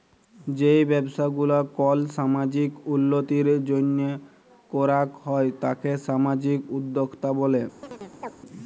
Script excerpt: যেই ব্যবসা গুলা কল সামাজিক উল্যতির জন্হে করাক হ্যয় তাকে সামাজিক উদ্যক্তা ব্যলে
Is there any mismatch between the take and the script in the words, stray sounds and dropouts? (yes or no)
yes